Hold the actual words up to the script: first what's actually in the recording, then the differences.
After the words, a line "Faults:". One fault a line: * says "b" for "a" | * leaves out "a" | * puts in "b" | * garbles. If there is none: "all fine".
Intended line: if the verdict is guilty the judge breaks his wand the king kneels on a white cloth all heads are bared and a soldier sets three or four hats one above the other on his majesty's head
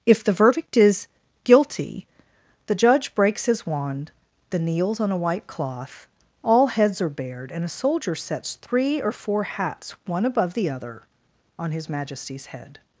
if the verdict is guilty the judge breaks his wand the kneels on a white cloth all heads are bared and a soldier sets three or four hats one above the other on his majesty's head
Faults:
* leaves out "king"